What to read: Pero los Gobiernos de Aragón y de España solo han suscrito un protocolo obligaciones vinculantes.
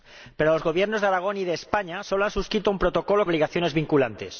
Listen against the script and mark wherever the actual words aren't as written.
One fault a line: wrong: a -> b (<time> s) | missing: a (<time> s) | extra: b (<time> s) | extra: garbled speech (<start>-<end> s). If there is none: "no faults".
no faults